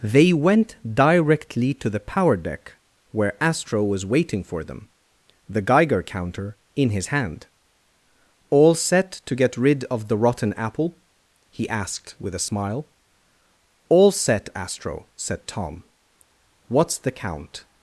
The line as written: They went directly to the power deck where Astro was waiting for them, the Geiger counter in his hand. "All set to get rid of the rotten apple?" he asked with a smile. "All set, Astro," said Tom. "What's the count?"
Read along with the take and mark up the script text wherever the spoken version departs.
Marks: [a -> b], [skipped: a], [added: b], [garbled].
They went directly to the power deck where Astro was waiting for them, the Geiger counter in his hand. "All set to get rid of the rotten apple?" he asked with a smile. "All set, Astro," said Tom. "What's the count?"